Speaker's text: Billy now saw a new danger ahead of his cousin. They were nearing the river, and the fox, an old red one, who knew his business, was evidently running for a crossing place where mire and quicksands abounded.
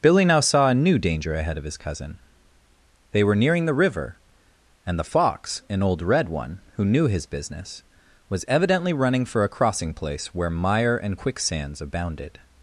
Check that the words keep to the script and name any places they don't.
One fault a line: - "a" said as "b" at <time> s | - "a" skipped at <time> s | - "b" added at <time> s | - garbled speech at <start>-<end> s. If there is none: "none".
none